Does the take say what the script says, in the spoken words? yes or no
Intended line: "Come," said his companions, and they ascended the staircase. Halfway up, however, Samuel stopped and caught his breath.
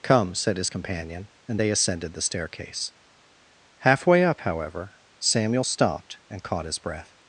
no